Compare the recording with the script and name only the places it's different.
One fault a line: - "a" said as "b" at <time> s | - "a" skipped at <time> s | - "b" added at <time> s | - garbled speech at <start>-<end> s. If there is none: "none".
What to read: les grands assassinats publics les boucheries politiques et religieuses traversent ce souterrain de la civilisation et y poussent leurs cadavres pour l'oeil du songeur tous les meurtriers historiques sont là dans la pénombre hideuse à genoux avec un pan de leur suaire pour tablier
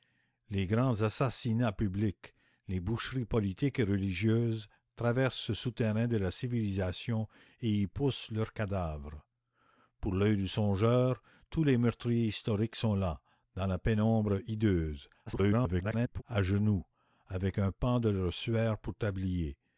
- garbled speech at 15.3-16.2 s